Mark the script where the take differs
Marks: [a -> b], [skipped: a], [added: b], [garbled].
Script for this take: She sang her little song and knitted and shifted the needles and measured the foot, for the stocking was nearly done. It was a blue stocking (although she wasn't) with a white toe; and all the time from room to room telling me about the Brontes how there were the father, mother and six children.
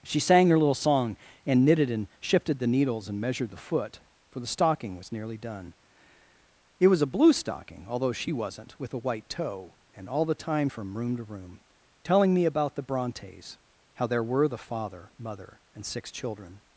She sang her little song and knitted and shifted the needles and measured the foot, for the stocking was nearly done. It was a blue stocking (although she wasn't) with a white toe; and all the time from room to room telling me about the Brontes how there were the father, mother and six children.